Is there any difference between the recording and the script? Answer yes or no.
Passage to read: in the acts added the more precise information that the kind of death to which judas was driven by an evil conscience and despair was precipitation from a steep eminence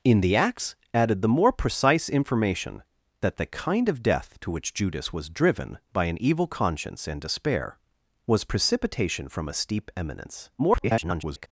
yes